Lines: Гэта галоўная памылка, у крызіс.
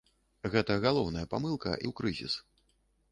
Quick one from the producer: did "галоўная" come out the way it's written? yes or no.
yes